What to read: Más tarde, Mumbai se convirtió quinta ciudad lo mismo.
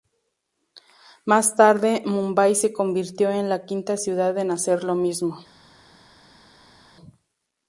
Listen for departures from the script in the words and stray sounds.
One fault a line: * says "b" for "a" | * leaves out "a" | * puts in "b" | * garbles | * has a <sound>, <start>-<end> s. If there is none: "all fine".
* puts in "en la"
* puts in "en hacer"